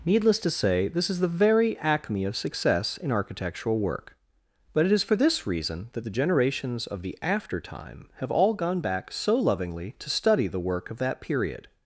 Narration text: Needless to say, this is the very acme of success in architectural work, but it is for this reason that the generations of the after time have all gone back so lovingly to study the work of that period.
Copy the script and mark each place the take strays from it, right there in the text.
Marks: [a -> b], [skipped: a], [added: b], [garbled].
Needless to say, this is the very acme of success in architectural work, but it is for this reason that the generations of the after time have all gone back so lovingly to study the work of that period.